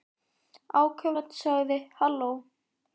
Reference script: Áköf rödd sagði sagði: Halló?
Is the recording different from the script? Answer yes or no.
yes